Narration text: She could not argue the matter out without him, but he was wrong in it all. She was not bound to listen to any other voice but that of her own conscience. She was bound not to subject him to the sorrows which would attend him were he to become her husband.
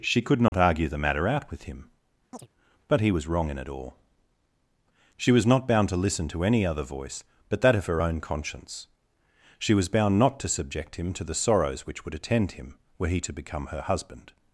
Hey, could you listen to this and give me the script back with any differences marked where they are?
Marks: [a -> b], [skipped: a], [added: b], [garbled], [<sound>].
She could not [dropout] argue the matter out [without -> with] him, [chirp] but he was wrong in it all. She was not bound to listen to any other voice but that of her own conscience. She was bound not to subject him to the sorrows which would attend him were he to become her husband.